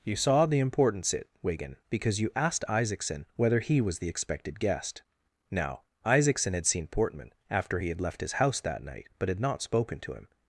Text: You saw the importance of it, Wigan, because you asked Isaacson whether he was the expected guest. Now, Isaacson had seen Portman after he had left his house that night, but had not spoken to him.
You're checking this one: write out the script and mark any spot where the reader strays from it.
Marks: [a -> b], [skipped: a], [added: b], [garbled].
You saw the importance [skipped: of] it, Wigan, because you asked Isaacson whether he was the expected guest. Now, Isaacson had seen Portman after he had left his house that night, but had not spoken to him.